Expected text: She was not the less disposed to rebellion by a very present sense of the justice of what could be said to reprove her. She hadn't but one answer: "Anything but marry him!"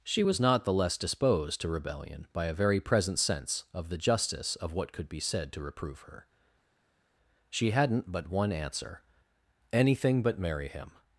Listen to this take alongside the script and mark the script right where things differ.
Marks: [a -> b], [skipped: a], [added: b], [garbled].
She was not the less disposed to rebellion by a very present sense of the justice of what could be said to reprove her. She hadn't but one answer: "Anything but marry him!"